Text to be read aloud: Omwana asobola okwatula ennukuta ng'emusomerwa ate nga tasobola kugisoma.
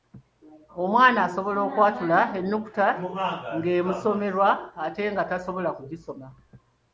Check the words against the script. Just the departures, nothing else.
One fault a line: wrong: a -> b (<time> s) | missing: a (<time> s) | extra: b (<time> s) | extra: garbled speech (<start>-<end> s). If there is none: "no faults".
no faults